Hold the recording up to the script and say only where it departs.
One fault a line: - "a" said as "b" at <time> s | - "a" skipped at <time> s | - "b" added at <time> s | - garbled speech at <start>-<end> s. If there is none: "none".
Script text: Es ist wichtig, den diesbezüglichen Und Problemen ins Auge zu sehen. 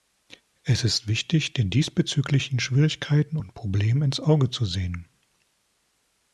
- "Schwierigkeiten" added at 2.6 s